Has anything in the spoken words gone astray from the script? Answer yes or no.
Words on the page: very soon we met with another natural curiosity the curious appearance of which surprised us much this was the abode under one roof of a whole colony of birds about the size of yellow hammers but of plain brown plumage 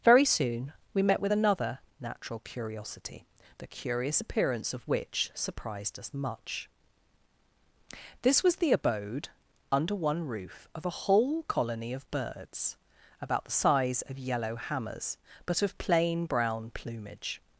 no